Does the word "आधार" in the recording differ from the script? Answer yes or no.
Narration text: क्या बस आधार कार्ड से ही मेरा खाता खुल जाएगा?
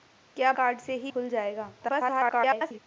yes